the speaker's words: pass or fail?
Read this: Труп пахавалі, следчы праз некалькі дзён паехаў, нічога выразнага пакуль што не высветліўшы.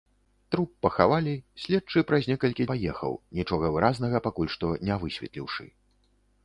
fail